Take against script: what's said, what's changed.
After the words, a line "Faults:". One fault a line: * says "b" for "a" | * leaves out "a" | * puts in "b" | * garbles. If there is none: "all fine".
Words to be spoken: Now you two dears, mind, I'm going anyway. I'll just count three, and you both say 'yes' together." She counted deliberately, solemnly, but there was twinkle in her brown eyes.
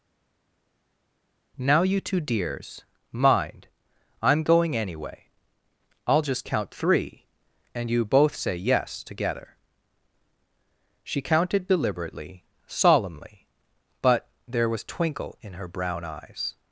Now you two dears, mind, I'm going anyway. I'll just count three, and you both say 'yes' together." She counted deliberately, solemnly, but there was twinkle in her brown eyes.
Faults:
all fine